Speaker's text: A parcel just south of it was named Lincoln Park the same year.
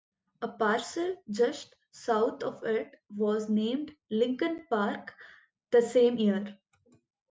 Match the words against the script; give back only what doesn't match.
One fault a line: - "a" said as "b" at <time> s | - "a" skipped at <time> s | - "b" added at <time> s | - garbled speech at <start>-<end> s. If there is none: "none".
none